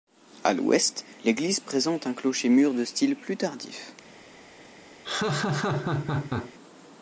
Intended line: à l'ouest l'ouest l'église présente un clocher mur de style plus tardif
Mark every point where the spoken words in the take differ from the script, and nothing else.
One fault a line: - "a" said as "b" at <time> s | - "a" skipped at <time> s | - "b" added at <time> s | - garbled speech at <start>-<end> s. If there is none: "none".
- "l'ouest" skipped at 1.1 s